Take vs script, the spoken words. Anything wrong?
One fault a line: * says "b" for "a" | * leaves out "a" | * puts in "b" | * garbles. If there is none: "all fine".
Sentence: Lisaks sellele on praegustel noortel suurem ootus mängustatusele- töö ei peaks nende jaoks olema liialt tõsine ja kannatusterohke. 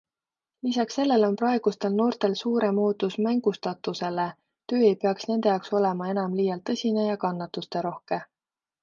* puts in "enam"